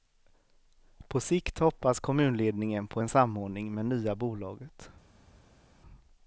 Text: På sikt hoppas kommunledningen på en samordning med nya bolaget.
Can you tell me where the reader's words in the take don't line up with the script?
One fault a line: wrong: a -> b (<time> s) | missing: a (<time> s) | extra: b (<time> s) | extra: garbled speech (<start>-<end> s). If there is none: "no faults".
no faults